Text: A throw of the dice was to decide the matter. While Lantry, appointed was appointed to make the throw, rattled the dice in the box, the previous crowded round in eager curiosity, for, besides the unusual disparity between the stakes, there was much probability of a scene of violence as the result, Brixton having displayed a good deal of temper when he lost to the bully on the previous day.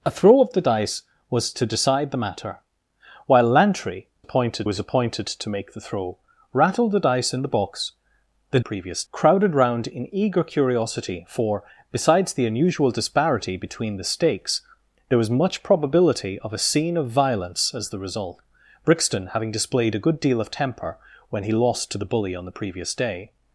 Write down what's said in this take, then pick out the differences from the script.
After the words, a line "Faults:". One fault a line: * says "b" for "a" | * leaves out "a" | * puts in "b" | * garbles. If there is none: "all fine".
A throw of the dice was to decide the matter. While Lantry, appointed was appointed to make the throw, rattled the dice in the box, the previous crowded round in eager curiosity, for, besides the unusual disparity between the stakes, there was much probability of a scene of violence as the result, Brixton having displayed a good deal of temper when he lost to the bully on the previous day.
Faults:
all fine